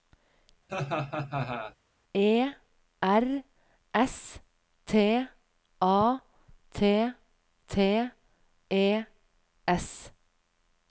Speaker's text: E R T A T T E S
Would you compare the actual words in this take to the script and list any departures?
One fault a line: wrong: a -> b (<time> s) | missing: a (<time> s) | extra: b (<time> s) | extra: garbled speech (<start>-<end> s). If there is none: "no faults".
extra: S (4.0 s)